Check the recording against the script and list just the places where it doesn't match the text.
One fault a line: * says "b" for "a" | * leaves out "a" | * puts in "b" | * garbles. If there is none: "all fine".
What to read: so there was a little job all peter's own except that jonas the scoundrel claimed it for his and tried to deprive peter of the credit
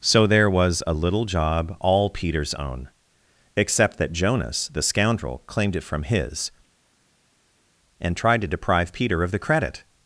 * says "from" for "for"